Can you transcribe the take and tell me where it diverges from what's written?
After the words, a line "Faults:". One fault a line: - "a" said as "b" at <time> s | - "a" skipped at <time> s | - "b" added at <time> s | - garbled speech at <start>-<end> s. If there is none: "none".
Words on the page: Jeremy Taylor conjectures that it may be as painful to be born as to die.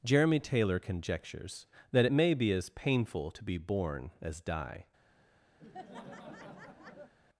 Jeremy Taylor conjectures that it may be as painful to be born as die.
Faults:
- "to" skipped at 4.4 s